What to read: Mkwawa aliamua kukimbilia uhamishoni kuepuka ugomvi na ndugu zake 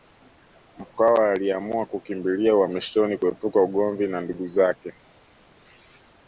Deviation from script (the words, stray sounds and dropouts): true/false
false